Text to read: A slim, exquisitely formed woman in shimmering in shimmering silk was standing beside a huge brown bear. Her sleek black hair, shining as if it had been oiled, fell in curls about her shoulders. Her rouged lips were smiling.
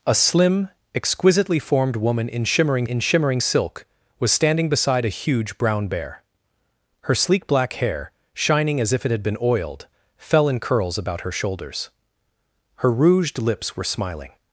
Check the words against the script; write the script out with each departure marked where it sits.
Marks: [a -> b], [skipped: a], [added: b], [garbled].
A slim, exquisitely formed woman in shimmering in shimmering silk was standing beside a huge brown bear. Her sleek black hair, shining as if it had been oiled, fell in curls about her shoulders. Her rouged lips were smiling.